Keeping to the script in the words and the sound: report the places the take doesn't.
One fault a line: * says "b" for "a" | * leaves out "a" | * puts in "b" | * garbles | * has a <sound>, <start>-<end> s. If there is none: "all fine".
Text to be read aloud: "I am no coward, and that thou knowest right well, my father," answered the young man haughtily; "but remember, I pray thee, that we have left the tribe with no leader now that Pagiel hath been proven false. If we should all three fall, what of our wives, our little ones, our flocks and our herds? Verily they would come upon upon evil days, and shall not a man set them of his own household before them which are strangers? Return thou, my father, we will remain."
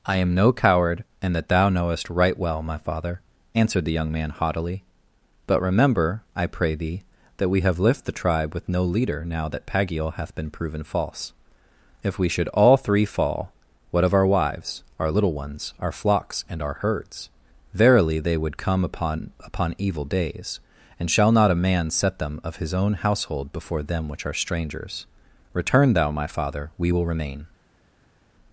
all fine